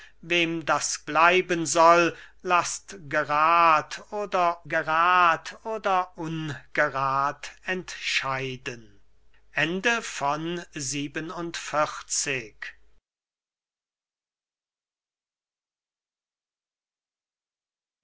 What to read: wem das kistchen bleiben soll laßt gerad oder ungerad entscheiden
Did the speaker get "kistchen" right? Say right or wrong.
wrong